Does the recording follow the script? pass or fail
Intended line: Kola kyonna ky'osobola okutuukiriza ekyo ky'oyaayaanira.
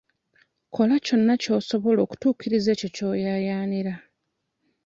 pass